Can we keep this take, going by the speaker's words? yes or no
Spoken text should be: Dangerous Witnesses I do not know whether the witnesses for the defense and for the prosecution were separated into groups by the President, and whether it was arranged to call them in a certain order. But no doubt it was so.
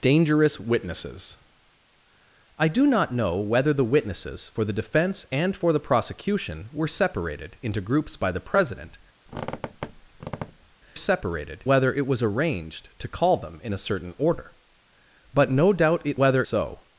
no